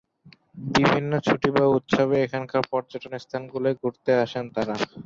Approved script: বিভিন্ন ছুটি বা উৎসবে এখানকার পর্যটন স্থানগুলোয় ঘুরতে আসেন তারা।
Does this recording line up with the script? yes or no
yes